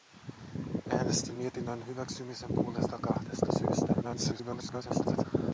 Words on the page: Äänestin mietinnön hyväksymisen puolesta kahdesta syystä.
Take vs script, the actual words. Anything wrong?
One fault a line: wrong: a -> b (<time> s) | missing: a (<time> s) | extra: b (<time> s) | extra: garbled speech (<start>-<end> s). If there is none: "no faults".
extra: garbled speech (4.0-5.3 s)